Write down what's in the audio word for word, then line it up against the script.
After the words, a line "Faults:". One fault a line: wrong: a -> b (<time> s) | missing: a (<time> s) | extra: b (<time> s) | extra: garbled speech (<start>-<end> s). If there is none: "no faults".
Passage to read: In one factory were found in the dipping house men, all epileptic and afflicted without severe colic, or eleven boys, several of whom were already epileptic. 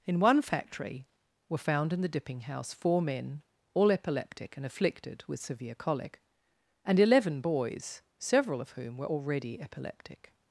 In one factory were found in the dipping house four men, all epileptic and afflicted with severe colic, and eleven boys, several of whom were already epileptic.
Faults:
extra: four (2.7 s)
wrong: without -> with (5.3 s)
wrong: or -> and (6.8 s)